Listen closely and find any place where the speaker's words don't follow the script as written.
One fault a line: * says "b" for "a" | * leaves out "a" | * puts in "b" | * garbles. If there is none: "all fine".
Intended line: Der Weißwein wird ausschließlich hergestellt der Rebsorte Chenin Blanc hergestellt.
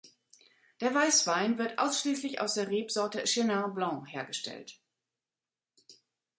* says "aus" for "hergestellt"